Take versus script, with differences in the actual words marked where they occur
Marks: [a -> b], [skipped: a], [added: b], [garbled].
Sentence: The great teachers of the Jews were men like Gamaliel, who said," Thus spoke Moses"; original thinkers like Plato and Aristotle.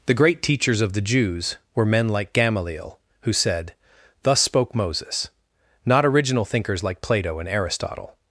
The great teachers of the Jews were men like Gamaliel, who said," Thus spoke Moses"; [added: not] original thinkers like Plato and Aristotle.